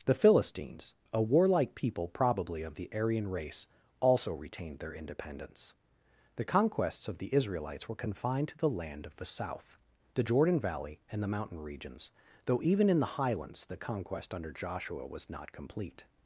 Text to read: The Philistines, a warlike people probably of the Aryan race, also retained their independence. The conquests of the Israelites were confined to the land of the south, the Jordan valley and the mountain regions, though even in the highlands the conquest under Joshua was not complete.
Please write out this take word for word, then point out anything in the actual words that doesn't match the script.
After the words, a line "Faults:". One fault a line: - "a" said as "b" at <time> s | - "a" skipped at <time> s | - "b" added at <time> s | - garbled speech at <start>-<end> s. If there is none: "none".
The Philistines, a warlike people probably of the Aryan race, also retained their independence. The conquests of the Israelites were confined to the land of the south, the Jordan valley and the mountain regions, though even in the highlands the conquest under Joshua was not complete.
Faults:
none